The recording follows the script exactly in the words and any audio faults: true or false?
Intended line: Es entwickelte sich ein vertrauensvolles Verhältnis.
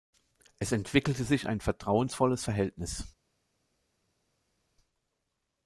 true